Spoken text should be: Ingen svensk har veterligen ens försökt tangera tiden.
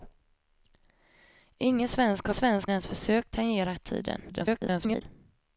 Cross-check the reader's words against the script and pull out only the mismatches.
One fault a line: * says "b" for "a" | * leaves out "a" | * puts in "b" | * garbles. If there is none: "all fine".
* says "svensk" for "veterligen"
* garbles